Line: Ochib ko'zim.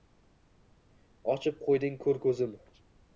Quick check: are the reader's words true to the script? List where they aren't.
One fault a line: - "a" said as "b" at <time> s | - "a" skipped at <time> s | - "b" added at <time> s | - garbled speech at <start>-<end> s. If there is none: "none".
- "qo'yding ko'r" added at 1.6 s